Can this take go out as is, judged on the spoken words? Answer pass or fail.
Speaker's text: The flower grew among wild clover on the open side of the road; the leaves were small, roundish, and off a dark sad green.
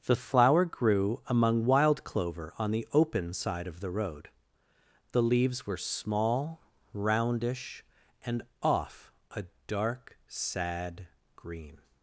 pass